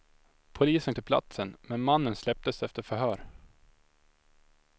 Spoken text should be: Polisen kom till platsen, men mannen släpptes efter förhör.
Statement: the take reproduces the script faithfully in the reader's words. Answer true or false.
false